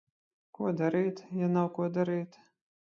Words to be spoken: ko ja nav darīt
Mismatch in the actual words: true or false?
true